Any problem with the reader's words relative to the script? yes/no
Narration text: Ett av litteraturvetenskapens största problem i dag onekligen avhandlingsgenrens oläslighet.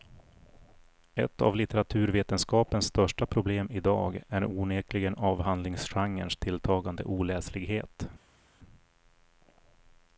yes